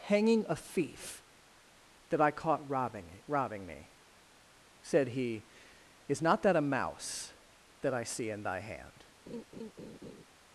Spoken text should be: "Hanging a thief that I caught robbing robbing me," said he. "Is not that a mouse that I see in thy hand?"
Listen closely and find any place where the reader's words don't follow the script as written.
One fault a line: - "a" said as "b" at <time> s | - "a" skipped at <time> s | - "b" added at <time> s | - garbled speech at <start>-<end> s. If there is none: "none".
none